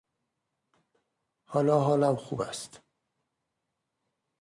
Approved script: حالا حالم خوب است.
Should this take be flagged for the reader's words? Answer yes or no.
no